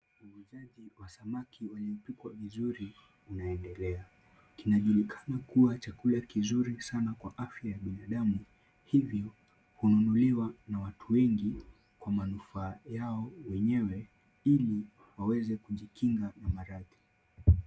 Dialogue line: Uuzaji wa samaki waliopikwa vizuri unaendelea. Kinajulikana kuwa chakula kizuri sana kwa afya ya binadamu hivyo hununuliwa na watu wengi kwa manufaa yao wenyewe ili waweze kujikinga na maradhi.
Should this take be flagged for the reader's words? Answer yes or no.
no